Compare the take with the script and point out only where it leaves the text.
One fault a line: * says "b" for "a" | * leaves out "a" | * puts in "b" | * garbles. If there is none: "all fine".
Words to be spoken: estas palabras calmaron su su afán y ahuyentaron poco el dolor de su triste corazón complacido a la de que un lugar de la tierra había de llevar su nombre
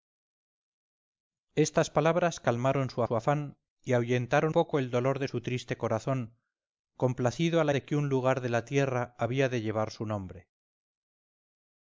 all fine